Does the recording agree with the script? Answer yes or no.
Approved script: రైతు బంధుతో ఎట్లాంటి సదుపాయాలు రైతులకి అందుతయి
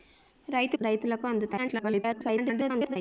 no